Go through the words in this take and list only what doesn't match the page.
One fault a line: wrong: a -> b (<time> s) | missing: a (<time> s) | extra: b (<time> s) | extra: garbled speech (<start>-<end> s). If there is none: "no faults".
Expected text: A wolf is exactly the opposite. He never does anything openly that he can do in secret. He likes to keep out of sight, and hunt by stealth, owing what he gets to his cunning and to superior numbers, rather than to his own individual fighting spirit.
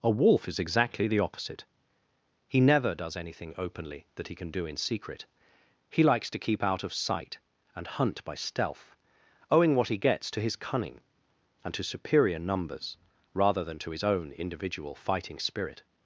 no faults